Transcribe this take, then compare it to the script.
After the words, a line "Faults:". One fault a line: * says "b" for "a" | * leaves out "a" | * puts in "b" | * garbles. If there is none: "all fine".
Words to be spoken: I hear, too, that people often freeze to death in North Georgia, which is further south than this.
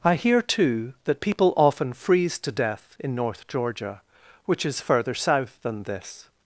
I hear, too, that people often freeze to death in North Georgia, which is further south than this.
Faults:
all fine